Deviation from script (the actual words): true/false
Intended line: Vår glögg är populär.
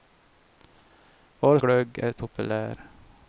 false